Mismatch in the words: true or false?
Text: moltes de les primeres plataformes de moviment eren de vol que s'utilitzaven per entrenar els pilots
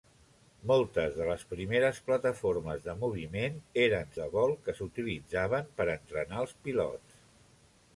false